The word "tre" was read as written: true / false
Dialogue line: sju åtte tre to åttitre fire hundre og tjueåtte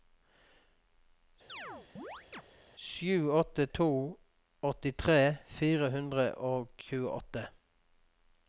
false